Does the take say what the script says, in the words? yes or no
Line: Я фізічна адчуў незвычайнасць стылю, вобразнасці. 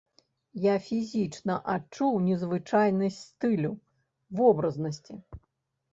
yes